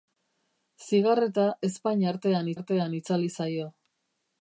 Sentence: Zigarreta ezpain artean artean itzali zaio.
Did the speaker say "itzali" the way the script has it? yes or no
yes